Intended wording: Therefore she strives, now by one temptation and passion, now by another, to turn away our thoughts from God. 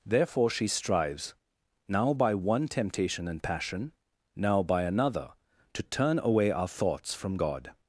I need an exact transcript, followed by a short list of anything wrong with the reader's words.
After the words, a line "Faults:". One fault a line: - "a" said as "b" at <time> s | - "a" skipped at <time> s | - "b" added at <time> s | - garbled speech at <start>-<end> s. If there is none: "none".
Therefore she strives, now by one temptation and passion, now by another, to turn away our thoughts from God.
Faults:
none